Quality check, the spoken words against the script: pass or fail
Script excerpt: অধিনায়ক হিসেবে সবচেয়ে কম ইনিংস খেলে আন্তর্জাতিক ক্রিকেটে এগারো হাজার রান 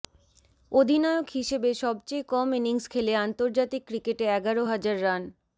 pass